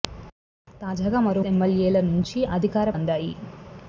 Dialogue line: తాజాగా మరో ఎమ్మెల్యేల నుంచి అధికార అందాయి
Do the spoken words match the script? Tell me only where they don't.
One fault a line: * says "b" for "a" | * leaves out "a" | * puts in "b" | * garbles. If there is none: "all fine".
all fine